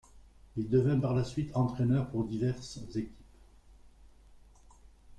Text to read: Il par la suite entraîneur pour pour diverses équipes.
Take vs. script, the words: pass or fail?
fail